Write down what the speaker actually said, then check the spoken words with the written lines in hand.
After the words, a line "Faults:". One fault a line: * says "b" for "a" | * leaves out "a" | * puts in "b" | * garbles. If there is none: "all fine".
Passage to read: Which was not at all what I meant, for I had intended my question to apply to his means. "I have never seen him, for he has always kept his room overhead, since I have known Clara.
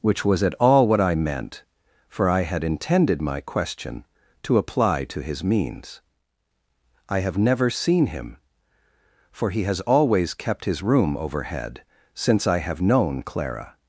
Which was at all what I meant, for I had intended my question to apply to his means. "I have never seen him, for he has always kept his room overhead, since I have known Clara.
Faults:
* leaves out "not"